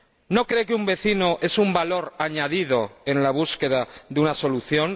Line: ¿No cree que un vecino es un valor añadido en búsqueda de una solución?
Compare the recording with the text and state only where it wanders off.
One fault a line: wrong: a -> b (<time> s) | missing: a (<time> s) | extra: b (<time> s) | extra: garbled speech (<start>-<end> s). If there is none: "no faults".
extra: la (3.2 s)